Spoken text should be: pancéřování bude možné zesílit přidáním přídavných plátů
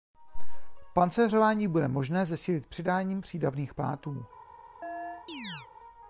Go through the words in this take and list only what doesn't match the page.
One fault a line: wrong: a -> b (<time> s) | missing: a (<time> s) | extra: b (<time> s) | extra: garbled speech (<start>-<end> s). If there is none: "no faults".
no faults